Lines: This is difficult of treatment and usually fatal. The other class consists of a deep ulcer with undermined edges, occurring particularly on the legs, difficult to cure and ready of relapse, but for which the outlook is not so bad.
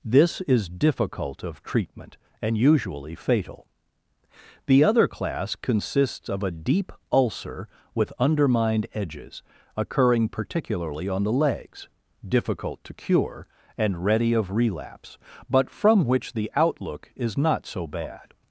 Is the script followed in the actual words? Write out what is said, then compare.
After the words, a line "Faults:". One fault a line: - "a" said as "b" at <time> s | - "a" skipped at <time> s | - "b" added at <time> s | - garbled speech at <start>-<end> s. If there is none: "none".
This is difficult of treatment and usually fatal. The other class consists of a deep ulcer with undermined edges, occurring particularly on the legs, difficult to cure and ready of relapse, but from which the outlook is not so bad.
Faults:
- "for" said as "from" at 15.7 s